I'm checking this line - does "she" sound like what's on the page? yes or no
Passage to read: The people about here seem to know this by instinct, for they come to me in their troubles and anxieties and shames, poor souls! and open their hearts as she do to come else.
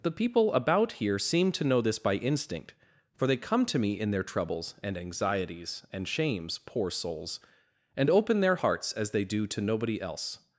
no